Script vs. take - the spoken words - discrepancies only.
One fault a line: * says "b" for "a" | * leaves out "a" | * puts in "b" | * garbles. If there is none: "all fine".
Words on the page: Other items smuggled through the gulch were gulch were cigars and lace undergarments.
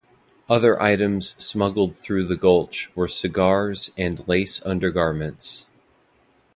* leaves out "gulch were"